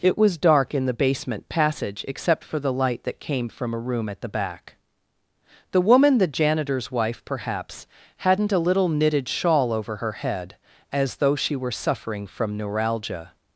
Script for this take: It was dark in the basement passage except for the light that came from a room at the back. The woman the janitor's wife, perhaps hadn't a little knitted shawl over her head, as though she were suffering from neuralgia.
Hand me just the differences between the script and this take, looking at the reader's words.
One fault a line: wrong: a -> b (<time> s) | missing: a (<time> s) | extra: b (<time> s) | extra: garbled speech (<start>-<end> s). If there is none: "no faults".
no faults